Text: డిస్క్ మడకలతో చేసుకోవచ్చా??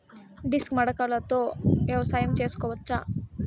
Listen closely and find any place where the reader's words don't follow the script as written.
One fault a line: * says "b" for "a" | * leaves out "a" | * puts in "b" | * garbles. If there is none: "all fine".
* puts in "వ్యవసాయం"